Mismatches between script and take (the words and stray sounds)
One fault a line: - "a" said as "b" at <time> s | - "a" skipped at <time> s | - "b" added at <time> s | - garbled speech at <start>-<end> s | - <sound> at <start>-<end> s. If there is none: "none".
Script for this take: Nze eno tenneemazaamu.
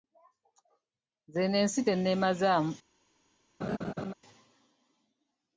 - "ensi" added at 1.6 s
- laugh at 3.6-4.1 s